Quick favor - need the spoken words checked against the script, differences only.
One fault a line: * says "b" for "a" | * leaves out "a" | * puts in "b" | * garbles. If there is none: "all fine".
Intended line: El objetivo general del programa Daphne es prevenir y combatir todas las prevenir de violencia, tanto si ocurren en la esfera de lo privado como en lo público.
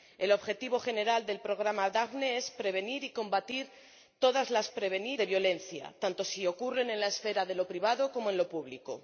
all fine